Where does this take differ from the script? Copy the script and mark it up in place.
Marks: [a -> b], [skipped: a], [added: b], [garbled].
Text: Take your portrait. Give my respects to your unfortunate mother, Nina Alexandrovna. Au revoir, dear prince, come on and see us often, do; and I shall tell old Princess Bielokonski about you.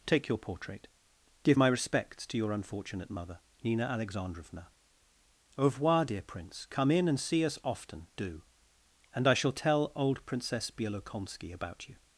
Take your portrait. Give my respects to your unfortunate mother, Nina Alexandrovna. Au revoir, dear prince, come [on -> in] and see us often, do; and I shall tell old Princess Bielokonski about you.